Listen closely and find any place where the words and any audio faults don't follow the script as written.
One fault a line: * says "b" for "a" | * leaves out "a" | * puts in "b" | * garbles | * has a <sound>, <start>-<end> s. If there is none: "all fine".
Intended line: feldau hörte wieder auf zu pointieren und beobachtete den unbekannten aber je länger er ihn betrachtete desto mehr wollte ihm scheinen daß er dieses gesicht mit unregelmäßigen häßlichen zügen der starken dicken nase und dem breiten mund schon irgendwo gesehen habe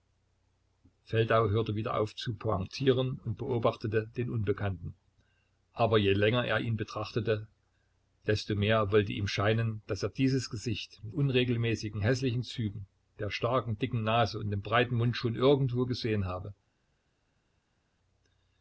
all fine